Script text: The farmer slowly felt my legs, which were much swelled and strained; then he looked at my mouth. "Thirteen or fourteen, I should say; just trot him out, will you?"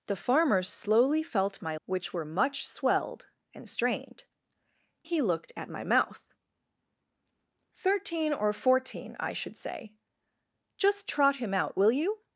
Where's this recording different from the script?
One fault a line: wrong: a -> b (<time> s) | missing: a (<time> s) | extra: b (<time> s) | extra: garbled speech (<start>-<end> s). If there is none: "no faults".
missing: legs (1.8 s)
missing: then (4.3 s)